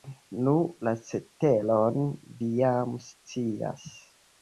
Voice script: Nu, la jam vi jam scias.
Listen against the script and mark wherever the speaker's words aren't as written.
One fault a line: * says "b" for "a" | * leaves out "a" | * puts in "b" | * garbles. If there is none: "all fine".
* says "ceteron" for "jam"